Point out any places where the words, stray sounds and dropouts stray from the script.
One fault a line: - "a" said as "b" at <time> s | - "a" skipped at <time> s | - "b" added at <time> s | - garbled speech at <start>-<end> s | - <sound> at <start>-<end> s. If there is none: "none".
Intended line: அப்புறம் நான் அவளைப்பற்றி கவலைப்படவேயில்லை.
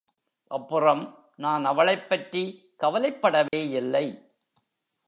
- dropout at 3.5-3.5 s